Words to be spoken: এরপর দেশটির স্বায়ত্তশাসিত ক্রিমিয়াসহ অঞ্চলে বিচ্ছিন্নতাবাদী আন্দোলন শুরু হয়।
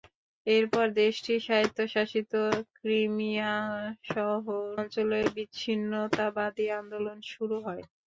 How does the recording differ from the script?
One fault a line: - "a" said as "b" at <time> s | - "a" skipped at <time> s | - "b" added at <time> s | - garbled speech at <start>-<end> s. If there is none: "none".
none